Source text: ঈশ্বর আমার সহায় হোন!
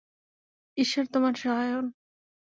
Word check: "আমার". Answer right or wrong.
wrong